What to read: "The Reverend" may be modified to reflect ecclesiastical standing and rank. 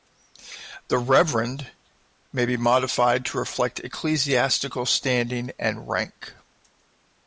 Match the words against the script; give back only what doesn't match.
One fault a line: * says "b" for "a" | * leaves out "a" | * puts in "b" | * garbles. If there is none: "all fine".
all fine